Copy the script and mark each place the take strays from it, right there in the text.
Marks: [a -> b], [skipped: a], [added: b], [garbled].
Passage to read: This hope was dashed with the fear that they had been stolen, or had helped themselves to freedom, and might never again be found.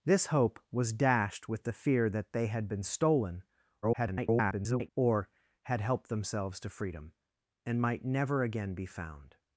This hope was dashed with the fear that they had been stolen, [garbled] or had helped themselves to freedom, and might never again be found.